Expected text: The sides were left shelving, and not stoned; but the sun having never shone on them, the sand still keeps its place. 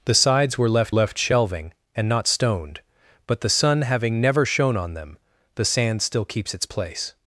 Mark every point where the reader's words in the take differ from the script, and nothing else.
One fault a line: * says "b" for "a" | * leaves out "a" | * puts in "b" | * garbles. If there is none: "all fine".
* puts in "left"